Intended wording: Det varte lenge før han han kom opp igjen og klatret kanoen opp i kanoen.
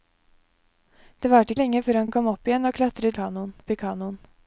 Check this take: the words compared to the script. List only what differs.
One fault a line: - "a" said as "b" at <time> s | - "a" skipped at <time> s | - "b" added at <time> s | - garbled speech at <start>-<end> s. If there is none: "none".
none